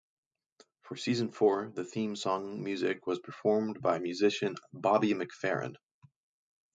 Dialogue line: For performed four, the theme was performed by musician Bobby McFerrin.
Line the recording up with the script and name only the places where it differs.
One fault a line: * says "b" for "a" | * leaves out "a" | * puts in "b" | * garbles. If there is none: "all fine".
* says "season" for "performed"
* puts in "song music"